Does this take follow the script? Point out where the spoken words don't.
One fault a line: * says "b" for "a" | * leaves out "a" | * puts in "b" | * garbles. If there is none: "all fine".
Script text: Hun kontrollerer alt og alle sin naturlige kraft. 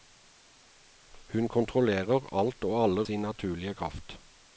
all fine